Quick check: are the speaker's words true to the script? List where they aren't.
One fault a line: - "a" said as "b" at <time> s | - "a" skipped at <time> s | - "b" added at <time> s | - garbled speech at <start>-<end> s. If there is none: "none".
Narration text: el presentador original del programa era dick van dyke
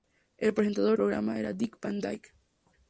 - "original del" skipped at 0.9 s